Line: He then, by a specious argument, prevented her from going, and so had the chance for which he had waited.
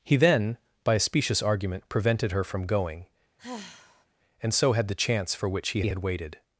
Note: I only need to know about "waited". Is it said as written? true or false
true